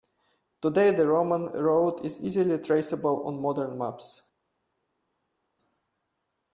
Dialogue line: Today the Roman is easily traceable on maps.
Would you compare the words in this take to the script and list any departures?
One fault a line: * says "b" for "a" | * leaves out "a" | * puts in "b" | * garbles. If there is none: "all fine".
* puts in "road"
* puts in "modern"